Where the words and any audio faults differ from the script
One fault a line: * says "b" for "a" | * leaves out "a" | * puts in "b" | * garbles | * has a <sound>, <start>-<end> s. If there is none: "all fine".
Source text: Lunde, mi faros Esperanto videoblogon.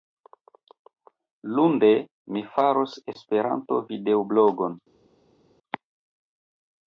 all fine